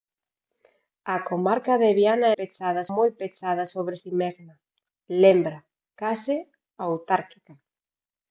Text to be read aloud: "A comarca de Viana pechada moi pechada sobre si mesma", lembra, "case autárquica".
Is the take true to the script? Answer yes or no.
yes